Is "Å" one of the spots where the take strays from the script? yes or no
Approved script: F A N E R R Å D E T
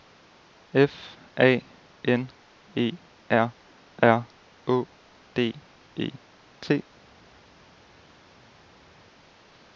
no